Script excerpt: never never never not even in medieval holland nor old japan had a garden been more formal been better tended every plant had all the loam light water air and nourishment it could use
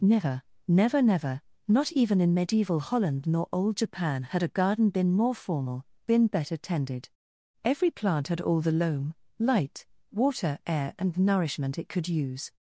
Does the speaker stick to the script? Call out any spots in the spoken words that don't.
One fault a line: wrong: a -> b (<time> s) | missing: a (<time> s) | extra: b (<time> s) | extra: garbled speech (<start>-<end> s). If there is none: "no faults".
no faults